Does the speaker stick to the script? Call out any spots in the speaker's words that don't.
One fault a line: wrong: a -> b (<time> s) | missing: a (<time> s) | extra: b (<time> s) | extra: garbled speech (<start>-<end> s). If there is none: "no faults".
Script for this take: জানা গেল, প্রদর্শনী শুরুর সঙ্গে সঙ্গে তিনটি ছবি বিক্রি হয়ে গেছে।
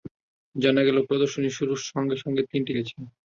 missing: ছবি বিক্রি হয়ে (2.7 s)